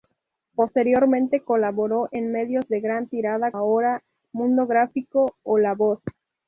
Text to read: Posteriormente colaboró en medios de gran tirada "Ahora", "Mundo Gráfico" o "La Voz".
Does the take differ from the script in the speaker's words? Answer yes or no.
no